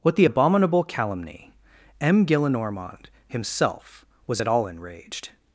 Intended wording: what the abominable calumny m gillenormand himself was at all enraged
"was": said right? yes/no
yes